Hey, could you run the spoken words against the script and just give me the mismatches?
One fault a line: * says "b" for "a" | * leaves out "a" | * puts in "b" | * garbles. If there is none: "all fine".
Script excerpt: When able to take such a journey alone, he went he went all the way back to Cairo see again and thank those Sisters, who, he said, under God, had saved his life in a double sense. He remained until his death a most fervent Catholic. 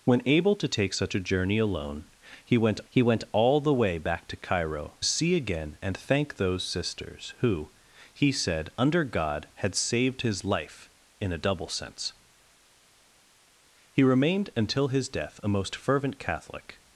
all fine